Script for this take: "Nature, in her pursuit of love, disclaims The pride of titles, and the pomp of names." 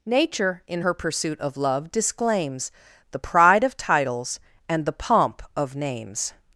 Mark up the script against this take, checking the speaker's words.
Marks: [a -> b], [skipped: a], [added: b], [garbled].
"Nature, in her pursuit of love, disclaims The pride of titles, and the pomp of names."